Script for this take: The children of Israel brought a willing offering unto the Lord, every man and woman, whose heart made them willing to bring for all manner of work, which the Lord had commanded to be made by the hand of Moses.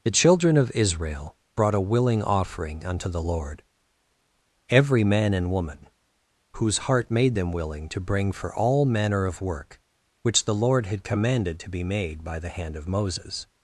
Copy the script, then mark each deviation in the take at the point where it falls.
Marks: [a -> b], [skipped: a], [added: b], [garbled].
The children of Israel brought a willing offering unto the Lord, every man and woman, whose heart made them willing to bring for all manner of work, which the Lord had commanded to be made by the hand of Moses.